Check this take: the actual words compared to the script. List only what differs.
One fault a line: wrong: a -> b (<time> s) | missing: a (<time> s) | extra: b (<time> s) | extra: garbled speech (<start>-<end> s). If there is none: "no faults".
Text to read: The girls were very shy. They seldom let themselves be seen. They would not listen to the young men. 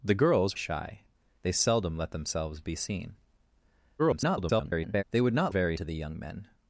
missing: were very (0.6 s)
extra: garbled speech (4.0-5.0 s)
wrong: listen -> very (5.5 s)